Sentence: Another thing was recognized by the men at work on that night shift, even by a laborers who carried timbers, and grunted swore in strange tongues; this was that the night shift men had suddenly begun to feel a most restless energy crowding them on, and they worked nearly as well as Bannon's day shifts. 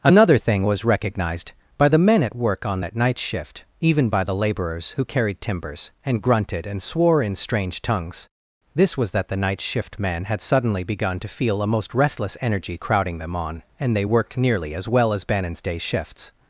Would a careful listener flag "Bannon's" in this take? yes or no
no